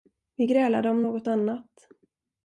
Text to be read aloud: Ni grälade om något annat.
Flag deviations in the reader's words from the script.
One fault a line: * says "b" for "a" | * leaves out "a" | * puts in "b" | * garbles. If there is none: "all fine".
* says "Vi" for "Ni"